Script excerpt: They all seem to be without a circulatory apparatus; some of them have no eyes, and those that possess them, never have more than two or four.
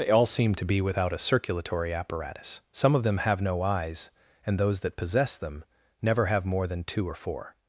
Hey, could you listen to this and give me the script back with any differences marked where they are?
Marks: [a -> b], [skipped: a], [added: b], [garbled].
They all seem to be without a circulatory apparatus; some of them have no eyes, and those that possess them, never have more than two or four.